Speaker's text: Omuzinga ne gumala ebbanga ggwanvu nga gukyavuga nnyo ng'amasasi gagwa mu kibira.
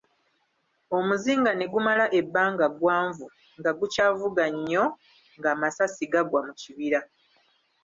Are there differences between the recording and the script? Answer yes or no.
no